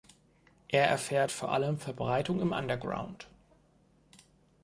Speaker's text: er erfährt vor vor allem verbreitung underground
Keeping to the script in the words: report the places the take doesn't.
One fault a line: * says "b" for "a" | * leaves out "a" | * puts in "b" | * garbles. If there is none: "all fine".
* leaves out "vor"
* puts in "im"